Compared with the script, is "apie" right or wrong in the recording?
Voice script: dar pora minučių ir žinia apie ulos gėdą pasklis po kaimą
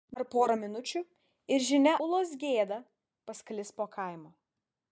wrong